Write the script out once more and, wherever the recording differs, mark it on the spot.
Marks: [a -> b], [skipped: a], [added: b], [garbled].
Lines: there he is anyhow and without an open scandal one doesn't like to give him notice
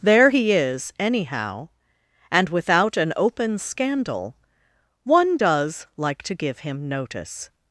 there he is anyhow and without an open scandal one [doesn't -> does] like to give him notice